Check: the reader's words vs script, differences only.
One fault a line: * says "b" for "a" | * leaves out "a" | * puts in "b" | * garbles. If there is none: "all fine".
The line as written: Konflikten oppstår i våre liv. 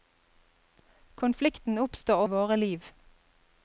all fine